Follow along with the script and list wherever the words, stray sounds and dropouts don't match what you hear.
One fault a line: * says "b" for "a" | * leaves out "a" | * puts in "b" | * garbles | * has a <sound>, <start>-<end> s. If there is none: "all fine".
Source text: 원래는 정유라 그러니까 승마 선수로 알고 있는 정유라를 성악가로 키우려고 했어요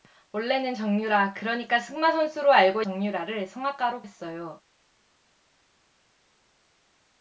* leaves out "있는"
* leaves out "키우려고"